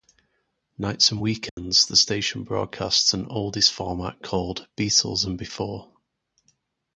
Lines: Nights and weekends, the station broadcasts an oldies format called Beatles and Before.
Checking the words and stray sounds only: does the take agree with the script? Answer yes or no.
no